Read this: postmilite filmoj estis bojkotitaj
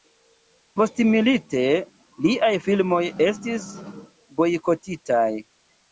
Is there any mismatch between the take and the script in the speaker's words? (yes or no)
yes